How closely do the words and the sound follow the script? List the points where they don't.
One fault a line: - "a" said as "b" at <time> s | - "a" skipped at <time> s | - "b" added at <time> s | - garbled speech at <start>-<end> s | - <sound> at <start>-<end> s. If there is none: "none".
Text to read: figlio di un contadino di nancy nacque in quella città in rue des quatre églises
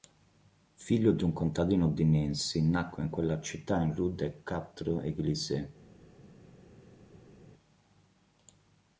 none